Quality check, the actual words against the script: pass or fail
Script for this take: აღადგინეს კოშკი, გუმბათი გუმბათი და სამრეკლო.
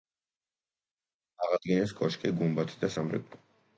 fail